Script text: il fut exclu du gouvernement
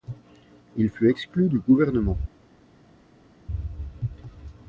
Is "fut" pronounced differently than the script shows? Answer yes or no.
no